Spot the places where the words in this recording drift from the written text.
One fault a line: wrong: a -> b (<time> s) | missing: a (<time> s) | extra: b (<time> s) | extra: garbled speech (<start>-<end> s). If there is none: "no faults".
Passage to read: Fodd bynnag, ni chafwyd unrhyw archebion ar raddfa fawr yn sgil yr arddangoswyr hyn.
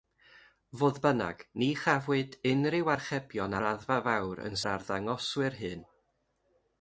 missing: ar (3.6 s)
missing: sgil (4.6 s)